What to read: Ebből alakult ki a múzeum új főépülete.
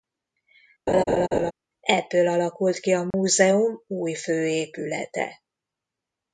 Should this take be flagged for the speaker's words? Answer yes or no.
no